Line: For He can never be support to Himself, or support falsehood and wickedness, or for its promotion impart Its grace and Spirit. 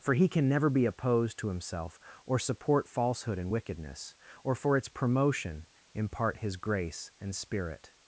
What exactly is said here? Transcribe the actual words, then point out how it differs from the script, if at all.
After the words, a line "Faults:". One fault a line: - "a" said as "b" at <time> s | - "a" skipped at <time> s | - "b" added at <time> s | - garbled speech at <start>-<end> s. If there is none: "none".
For He can never be opposed to Himself, or support falsehood and wickedness, or for its promotion impart His grace and Spirit.
Faults:
- "support" said as "opposed" at 0.8 s
- "Its" said as "His" at 6.4 s